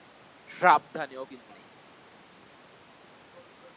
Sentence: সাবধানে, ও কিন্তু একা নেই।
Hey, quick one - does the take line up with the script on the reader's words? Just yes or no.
no